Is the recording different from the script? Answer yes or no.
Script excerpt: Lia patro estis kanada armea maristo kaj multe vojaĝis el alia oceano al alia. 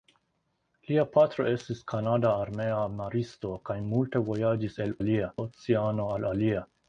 no